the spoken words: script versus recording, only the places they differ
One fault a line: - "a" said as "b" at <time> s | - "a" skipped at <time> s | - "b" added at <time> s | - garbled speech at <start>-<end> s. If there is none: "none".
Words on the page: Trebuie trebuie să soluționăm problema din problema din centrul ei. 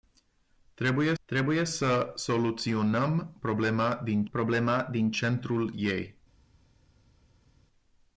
none